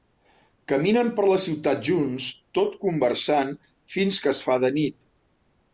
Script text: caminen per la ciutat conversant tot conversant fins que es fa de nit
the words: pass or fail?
fail